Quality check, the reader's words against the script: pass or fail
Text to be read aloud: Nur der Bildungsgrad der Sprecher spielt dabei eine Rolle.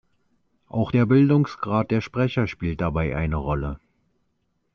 fail